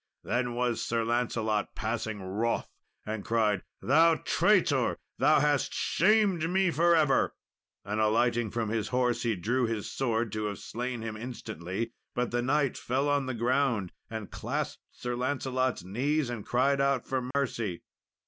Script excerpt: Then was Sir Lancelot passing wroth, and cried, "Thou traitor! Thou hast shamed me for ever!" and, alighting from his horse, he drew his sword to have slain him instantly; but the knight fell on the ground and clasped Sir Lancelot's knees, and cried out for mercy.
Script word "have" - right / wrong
right